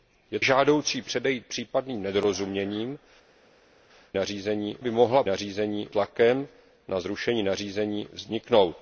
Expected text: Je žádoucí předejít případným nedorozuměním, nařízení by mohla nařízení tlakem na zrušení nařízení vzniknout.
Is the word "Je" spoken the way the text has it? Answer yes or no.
yes